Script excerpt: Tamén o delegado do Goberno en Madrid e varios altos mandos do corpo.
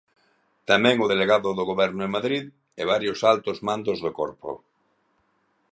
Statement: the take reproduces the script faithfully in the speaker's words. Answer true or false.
true